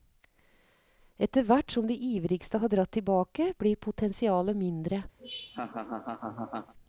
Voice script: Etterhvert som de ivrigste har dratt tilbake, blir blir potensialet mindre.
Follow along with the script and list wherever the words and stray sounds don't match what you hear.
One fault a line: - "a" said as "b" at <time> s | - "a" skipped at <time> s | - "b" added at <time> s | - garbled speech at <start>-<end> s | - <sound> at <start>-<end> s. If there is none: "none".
- "blir" skipped at 3.8 s
- laugh at 5.2-6.7 s